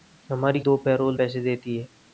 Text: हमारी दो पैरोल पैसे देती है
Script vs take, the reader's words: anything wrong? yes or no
no